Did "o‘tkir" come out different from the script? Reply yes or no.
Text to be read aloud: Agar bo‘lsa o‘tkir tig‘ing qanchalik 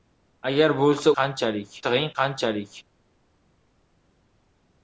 yes